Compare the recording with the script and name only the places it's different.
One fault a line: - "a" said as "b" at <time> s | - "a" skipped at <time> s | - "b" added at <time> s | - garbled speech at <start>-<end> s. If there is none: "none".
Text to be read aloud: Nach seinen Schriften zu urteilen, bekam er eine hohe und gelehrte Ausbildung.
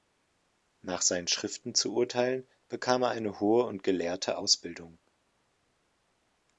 none